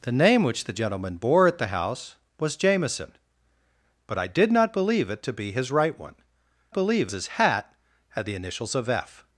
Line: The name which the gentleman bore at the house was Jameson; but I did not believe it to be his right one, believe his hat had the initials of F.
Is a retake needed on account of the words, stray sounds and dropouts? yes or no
no